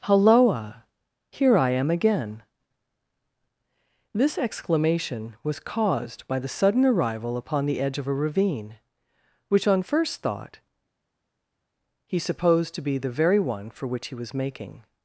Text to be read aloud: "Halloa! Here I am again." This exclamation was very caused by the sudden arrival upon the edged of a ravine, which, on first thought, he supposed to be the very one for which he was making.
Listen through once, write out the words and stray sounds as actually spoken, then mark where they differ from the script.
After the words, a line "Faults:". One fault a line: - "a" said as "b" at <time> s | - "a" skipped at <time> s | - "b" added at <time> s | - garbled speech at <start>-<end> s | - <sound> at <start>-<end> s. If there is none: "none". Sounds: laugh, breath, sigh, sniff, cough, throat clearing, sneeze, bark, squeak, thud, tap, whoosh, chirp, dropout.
"Halloa! Here I am again." This exclamation was caused by the sudden arrival upon the edge of a ravine, which, on first thought, he supposed to be the very one for which he was making.
Faults:
- "very" skipped at 5.6 s
- "edged" said as "edge" at 7.8 s